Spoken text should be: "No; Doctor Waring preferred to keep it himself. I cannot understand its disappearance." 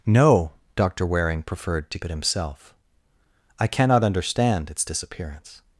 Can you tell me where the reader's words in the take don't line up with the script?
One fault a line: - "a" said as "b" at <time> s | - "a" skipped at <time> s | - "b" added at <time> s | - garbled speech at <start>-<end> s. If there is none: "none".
- "keep" skipped at 2.0 s